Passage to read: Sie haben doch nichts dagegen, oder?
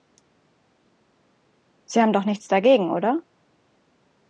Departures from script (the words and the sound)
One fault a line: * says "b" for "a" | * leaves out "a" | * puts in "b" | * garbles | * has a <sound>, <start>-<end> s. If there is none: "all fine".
all fine